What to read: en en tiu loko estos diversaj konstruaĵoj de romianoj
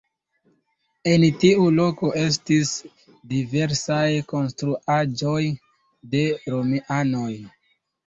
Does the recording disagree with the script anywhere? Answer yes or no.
yes